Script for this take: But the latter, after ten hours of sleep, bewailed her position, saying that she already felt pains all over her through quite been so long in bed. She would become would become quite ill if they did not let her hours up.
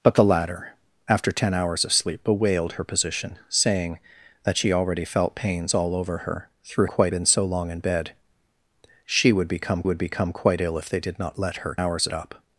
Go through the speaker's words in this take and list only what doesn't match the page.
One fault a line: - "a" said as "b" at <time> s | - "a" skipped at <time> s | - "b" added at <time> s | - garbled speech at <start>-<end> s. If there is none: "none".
none